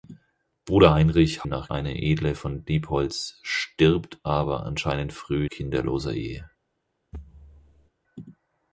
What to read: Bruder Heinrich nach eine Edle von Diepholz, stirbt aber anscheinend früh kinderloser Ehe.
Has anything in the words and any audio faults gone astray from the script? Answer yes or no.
yes